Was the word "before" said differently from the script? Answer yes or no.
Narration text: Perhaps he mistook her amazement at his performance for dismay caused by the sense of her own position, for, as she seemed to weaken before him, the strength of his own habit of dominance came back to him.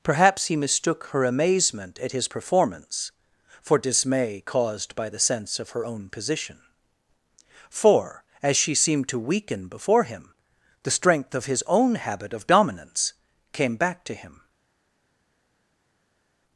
no